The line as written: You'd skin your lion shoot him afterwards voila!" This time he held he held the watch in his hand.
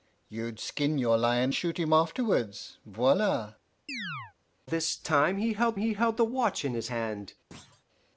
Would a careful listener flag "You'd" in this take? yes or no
no